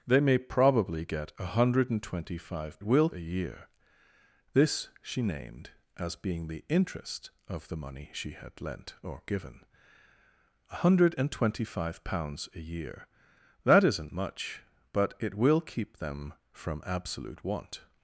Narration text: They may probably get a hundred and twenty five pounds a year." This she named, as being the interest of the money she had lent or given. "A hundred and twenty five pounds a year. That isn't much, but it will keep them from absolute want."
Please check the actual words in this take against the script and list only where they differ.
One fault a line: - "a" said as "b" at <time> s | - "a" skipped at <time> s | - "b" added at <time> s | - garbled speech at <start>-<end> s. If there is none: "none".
- "pounds" said as "will" at 2.8 s